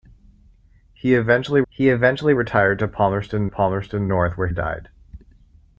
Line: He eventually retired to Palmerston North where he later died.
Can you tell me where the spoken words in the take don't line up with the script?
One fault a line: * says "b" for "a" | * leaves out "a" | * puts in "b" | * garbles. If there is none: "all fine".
* puts in "he eventually"
* puts in "Palmerston"
* leaves out "he later"